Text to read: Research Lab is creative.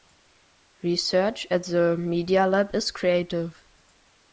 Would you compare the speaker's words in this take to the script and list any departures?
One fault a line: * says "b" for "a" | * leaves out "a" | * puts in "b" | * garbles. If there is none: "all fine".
* puts in "at the Media"